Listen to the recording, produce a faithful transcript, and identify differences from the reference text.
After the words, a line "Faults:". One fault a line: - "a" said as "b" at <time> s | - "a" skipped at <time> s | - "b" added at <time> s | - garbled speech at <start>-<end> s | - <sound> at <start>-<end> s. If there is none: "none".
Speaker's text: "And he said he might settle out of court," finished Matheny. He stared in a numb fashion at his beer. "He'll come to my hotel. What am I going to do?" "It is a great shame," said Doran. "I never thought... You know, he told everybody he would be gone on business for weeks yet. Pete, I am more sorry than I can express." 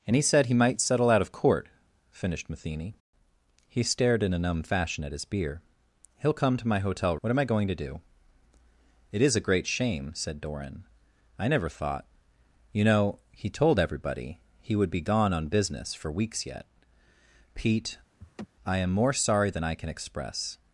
"And he said he might settle out of court," finished Matheny. He stared in a numb fashion at his beer. "He'll come to my hotel. What am I going to do?" "It is a great shame," said Doran. "I never thought... You know, he told everybody he would be gone on business for weeks yet. Pete, I am more sorry than I can express."
Faults:
- laugh at 18.2-18.5 s